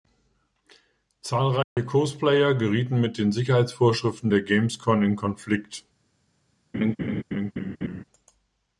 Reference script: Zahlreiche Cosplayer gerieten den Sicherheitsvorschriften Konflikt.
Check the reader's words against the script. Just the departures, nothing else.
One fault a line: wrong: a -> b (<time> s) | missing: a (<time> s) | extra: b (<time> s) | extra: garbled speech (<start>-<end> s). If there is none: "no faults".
extra: mit (3.0 s)
extra: der Gamescom in (4.3 s)